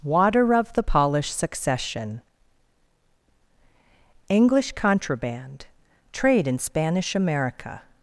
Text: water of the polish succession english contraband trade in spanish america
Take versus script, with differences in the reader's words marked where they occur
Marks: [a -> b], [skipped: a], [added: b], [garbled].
water of the polish succession english contraband trade in spanish america